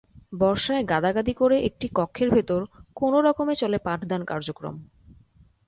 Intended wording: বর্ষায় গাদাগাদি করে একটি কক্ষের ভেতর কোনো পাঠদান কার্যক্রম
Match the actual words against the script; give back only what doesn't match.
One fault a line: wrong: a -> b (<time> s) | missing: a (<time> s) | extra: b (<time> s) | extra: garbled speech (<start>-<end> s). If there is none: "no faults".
extra: রকমে চলে (3.2 s)